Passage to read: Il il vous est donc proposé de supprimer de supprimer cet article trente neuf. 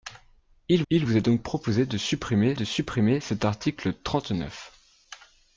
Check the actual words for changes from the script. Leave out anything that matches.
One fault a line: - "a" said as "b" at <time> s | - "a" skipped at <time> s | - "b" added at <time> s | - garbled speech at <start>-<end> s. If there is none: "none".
none